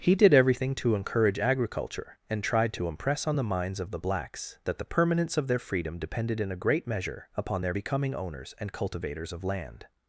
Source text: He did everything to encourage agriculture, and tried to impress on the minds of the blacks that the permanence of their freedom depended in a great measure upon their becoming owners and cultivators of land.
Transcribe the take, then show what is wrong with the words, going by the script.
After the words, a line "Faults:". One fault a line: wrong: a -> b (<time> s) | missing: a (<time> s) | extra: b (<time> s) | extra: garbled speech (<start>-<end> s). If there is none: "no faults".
He did everything to encourage agriculture, and tried to impress on the minds of the blacks that the permanence of their freedom depended in a great measure upon their becoming owners and cultivators of land.
Faults:
no faults